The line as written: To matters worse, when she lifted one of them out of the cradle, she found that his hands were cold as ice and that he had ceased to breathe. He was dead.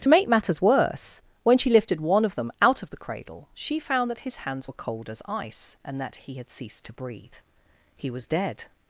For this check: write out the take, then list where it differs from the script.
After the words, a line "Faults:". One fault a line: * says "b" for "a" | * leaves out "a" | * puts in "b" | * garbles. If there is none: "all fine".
To make matters worse, when she lifted one of them out of the cradle, she found that his hands were cold as ice and that he had ceased to breathe. He was dead.
Faults:
* puts in "make"